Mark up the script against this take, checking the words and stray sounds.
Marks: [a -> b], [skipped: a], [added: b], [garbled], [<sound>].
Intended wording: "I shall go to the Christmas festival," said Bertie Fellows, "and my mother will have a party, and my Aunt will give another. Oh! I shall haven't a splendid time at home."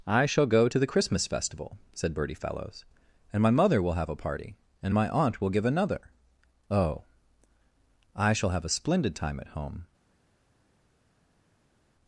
"I shall go to the Christmas festival," said Bertie Fellows, "and my mother will have a party, and my Aunt will give another. Oh! I shall [haven't -> have] a splendid time at home."